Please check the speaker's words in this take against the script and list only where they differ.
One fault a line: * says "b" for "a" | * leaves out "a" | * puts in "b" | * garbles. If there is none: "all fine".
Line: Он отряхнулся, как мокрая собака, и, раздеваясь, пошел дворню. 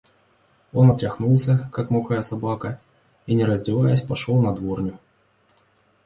* puts in "не"
* puts in "на"